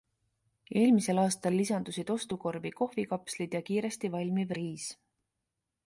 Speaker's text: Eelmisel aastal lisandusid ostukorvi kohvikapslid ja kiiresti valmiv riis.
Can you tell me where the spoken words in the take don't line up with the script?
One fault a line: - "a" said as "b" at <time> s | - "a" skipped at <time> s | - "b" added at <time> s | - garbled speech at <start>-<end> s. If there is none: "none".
none